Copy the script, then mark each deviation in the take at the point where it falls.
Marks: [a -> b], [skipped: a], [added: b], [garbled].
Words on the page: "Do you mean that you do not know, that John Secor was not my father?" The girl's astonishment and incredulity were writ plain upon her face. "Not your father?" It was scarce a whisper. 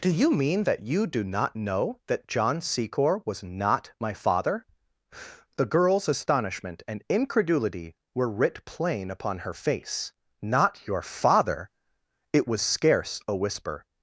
"Do you mean that you do not know, that John Secor was not my father?" The girl's astonishment and incredulity were writ plain upon her face. "Not your father?" It was scarce a whisper.